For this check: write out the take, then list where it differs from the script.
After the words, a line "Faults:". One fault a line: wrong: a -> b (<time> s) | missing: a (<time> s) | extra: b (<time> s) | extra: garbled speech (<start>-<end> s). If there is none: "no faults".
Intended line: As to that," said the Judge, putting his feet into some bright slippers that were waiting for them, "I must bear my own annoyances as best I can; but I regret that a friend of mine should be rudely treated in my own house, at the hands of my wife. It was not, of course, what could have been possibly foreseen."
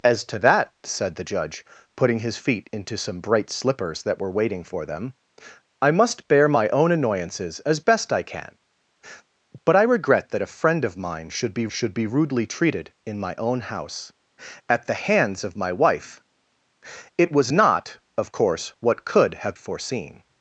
As to that," said the Judge, putting his feet into some bright slippers that were waiting for them, "I must bear my own annoyances as best I can; but I regret that a friend of mine should be should be rudely treated in my own house, at the hands of my wife. It was not, of course, what could have foreseen."
Faults:
extra: should be (11.7 s)
missing: been possibly (19.6 s)